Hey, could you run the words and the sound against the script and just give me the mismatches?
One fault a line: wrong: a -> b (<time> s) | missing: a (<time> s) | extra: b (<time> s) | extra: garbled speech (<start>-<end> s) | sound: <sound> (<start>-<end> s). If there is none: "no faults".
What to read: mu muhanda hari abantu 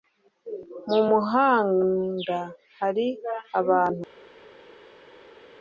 no faults